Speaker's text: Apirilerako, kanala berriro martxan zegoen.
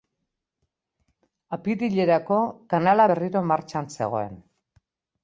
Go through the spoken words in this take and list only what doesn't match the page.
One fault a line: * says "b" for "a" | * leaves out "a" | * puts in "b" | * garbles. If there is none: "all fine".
all fine